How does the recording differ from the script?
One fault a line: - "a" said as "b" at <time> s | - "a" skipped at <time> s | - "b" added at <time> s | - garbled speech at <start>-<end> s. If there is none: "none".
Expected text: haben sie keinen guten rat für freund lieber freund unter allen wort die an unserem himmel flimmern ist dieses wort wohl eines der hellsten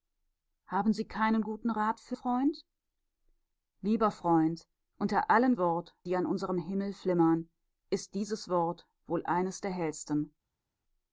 none